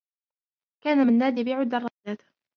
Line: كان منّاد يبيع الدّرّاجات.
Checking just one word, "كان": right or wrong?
right